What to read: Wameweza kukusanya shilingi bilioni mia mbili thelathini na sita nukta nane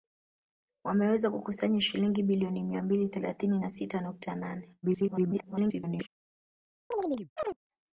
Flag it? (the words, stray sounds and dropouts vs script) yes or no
yes